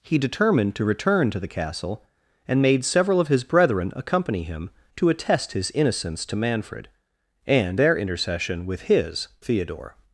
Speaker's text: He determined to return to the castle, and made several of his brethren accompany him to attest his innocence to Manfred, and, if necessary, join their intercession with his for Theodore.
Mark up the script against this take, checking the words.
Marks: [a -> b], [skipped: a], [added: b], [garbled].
He determined to return to the castle, and made several of his brethren accompany him to attest his innocence to Manfred, and, [skipped: if necessary, join] their intercession with his [skipped: for] Theodore.